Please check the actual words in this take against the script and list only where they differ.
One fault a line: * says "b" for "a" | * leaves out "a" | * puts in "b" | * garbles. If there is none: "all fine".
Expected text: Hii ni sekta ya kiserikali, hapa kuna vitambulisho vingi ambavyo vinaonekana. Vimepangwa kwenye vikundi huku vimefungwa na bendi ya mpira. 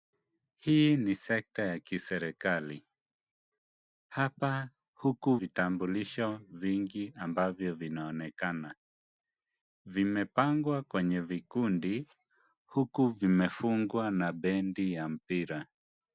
* says "huku" for "kuna"